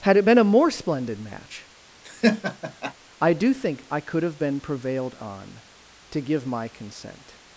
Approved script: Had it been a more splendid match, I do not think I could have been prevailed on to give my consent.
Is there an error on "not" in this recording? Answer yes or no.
yes